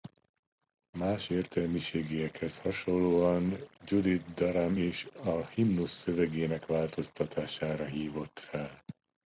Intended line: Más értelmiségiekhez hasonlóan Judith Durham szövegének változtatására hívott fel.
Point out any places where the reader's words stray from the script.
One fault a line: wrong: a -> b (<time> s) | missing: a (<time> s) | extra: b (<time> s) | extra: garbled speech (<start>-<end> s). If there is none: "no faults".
extra: is a himnusz (4.7 s)